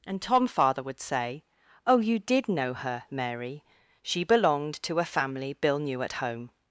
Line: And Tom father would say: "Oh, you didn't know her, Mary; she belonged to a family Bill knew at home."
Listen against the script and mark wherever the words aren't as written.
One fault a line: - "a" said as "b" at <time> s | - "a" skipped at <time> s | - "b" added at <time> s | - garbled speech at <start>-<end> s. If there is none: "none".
- "didn't" said as "did" at 2.2 s